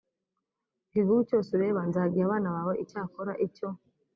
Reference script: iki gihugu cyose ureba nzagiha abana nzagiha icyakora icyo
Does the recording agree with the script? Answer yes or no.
no